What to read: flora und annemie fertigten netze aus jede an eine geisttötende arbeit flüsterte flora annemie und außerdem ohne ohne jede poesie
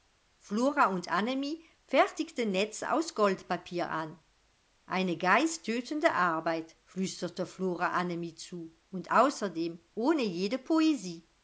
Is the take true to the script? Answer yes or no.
no